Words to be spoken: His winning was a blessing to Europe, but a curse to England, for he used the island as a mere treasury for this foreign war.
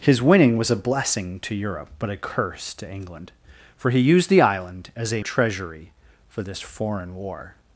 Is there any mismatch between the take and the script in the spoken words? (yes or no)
yes